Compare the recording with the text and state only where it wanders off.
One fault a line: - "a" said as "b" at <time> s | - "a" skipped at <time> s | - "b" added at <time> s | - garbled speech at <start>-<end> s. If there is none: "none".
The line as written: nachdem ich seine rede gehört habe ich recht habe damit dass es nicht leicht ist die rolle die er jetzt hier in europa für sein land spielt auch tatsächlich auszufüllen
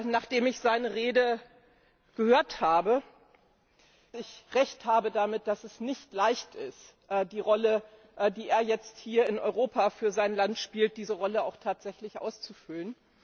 none